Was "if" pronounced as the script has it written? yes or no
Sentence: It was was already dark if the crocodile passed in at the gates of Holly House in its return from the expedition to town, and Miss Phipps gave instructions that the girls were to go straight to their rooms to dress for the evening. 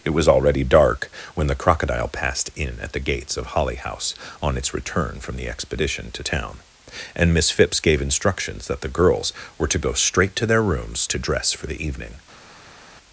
no